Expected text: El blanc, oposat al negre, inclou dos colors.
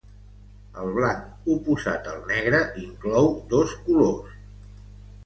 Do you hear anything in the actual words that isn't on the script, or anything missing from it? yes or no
no